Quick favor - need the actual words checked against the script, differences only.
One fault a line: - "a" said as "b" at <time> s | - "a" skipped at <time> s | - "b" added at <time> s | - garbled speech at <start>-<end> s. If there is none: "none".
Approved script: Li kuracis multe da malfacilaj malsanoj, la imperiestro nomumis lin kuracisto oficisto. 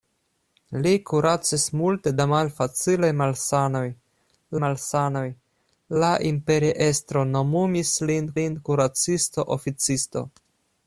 - "malsanoj" added at 4.7 s
- "lin" added at 8.4 s